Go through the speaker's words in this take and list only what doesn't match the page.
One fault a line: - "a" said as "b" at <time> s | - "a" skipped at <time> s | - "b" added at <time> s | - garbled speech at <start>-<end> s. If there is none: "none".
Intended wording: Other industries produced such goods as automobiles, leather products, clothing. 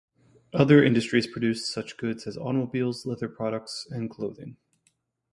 - "and" added at 3.9 s